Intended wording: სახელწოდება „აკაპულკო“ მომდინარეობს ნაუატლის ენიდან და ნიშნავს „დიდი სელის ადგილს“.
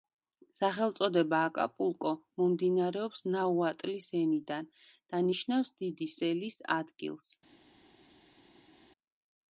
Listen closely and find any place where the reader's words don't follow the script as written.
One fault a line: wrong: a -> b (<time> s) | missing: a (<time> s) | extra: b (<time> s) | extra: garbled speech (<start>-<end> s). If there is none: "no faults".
no faults